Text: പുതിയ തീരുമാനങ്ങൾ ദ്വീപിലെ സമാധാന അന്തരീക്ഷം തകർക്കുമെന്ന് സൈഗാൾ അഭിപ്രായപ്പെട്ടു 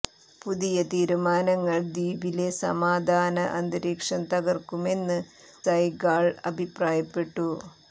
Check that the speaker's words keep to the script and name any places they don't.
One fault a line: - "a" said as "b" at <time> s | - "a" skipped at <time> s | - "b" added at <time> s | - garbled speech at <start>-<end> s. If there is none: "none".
none